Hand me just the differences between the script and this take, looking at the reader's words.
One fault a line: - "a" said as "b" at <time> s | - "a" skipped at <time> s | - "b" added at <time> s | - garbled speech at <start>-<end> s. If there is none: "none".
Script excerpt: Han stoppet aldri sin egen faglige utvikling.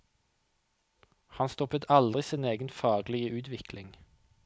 none